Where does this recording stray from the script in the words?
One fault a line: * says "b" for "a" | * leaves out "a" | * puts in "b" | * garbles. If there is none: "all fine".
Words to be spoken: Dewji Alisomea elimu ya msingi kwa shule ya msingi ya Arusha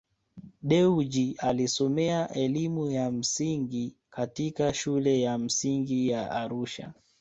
* says "katika" for "kwa"